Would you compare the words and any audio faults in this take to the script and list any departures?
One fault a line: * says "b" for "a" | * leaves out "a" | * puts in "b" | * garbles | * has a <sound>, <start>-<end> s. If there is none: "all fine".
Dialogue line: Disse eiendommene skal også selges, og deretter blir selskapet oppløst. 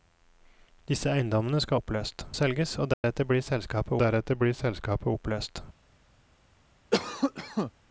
* says "oppløst" for "også"
* has a dropout, 2.9-3.0 s
* puts in "deretter blir selskapet"
* has a cough, 6.9-7.7 s